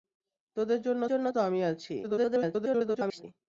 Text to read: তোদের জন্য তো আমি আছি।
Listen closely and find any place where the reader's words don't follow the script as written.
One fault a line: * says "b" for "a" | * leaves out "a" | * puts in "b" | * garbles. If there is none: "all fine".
* puts in "জন্য"
* garbles